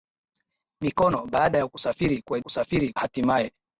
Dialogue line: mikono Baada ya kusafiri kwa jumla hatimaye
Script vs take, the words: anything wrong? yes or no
yes